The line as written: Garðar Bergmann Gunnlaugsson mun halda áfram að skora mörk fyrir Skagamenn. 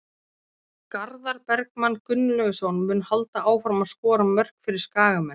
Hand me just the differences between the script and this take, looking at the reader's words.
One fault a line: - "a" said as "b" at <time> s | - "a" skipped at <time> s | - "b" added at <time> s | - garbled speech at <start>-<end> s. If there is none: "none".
none